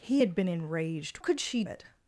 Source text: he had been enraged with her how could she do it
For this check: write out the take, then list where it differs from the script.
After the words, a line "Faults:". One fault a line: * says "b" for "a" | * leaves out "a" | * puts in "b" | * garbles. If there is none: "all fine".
he had been enraged could she it
Faults:
* leaves out "with her how"
* leaves out "do"